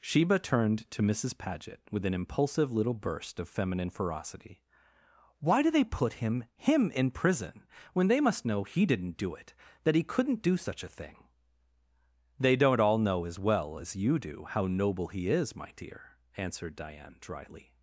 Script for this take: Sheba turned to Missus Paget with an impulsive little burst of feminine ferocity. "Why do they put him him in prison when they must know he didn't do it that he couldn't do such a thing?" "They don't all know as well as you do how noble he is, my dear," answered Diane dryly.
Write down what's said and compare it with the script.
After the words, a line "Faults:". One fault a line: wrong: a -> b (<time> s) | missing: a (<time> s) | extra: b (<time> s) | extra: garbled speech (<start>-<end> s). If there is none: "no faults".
Sheba turned to Missus Paget with an impulsive little burst of feminine ferocity. "Why do they put him him in prison when they must know he didn't do it that he couldn't do such a thing?" "They don't all know as well as you do how noble he is, my dear," answered Diane dryly.
Faults:
no faults